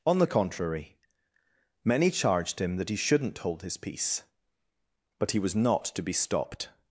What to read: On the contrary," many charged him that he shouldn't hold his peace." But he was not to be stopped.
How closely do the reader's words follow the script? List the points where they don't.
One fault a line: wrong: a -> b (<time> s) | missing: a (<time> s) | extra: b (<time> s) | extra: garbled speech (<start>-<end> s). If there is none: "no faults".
no faults